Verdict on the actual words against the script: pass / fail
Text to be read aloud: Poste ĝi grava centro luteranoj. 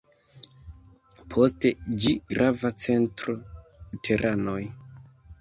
pass